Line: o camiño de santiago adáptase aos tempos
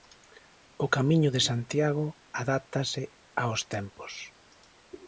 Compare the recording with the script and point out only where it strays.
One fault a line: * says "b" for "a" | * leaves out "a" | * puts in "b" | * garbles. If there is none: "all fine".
all fine